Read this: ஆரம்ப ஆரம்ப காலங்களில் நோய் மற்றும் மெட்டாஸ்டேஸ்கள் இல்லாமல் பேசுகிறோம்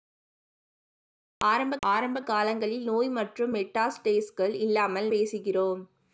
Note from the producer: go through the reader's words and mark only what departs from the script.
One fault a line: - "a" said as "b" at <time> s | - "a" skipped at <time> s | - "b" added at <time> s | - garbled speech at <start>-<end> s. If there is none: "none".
none